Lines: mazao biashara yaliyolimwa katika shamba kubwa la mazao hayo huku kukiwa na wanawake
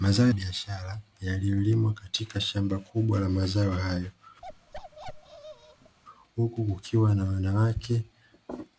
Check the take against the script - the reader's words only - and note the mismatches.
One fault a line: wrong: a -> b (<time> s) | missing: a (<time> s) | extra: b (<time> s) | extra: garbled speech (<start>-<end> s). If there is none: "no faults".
no faults